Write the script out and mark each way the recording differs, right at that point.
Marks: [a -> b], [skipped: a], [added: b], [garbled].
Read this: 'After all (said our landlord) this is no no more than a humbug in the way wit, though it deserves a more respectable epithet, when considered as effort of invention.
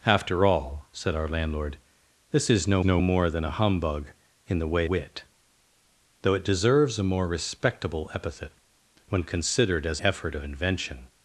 'After all (said our landlord) this is no no more than a humbug in the way wit, though it deserves a more respectable epithet, when considered as effort of invention.